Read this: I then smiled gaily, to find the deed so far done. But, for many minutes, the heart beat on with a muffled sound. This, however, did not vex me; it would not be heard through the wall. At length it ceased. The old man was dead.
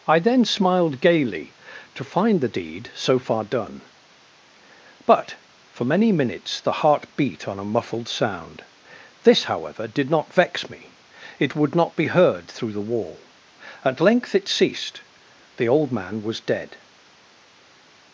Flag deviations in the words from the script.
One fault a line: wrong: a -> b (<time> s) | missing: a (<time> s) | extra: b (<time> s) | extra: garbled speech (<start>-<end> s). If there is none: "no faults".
missing: with (7.6 s)